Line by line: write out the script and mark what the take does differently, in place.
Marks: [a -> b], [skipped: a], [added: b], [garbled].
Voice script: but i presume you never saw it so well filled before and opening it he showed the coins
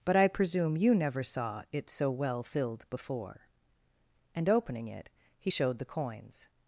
but i presume you never saw it so well filled before and opening it he showed the coins